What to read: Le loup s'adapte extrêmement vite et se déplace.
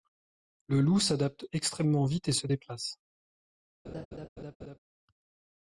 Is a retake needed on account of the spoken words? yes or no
no